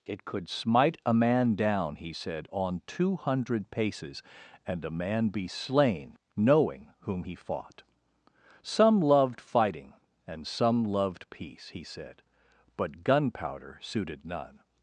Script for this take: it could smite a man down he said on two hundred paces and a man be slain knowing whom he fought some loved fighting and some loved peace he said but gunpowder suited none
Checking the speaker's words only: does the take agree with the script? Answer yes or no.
yes